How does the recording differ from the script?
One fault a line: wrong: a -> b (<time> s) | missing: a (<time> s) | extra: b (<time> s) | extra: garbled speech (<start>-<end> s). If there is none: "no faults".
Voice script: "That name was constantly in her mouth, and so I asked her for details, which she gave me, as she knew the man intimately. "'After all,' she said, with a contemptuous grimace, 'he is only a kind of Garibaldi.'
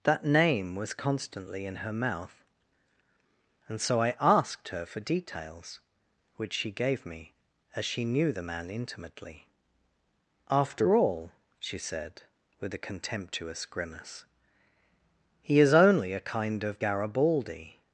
no faults